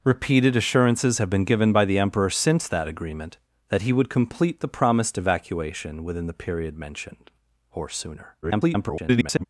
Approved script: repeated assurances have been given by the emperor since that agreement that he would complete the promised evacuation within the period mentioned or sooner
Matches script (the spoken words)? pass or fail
fail